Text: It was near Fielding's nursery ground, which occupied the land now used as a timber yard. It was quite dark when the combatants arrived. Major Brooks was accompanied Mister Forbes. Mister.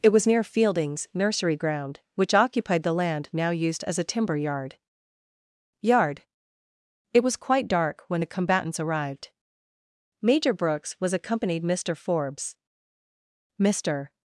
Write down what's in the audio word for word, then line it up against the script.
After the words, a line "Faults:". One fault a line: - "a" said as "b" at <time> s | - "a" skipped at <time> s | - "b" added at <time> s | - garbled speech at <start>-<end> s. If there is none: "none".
It was near Fielding's nursery ground, which occupied the land now used as a timber yard yard. It was quite dark when the combatants arrived. Major Brooks was accompanied Mister Forbes. Mister.
Faults:
- "yard" added at 5.8 s